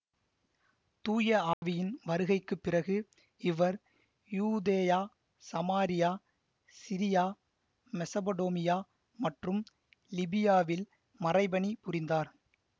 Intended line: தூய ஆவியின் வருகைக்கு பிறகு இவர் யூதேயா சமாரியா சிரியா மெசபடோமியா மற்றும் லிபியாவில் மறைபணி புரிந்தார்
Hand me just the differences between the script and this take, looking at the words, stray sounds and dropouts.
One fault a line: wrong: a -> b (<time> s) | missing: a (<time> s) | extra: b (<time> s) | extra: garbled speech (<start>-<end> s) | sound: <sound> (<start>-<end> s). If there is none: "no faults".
sound: dropout (1.5-1.6 s)